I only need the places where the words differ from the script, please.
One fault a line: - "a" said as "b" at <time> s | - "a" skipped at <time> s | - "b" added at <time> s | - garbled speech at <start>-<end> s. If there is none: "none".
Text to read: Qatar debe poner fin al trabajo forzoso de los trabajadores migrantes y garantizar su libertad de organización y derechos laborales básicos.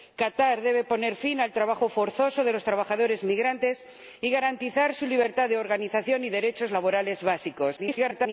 - garbled speech at 7.8-8.3 s